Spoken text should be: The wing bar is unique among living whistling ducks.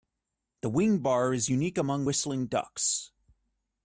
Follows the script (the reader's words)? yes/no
no